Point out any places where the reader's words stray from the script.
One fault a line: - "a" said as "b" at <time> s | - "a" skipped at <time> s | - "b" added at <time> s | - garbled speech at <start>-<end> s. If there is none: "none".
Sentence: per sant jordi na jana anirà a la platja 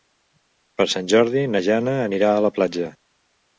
none